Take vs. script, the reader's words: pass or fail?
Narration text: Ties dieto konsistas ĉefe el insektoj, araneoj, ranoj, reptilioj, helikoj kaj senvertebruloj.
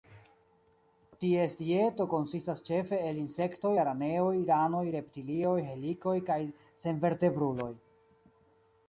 pass